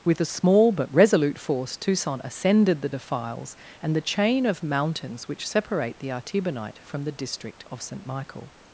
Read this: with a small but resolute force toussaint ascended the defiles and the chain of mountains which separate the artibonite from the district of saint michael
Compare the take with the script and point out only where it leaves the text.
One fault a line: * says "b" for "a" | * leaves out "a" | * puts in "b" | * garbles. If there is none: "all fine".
all fine